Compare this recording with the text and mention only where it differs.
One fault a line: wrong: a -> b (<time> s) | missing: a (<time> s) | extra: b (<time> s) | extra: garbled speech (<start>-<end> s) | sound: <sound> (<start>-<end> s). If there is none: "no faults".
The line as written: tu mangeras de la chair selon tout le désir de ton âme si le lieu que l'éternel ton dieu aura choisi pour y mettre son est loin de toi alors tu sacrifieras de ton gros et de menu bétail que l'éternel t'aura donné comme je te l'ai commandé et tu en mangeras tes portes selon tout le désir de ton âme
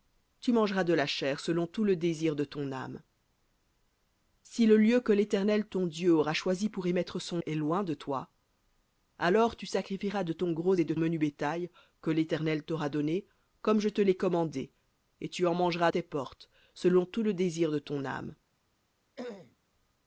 sound: throat clearing (19.2-19.6 s)